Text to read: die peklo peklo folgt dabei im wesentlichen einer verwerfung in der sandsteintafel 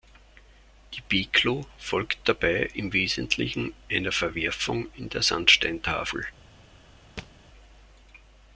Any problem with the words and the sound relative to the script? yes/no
yes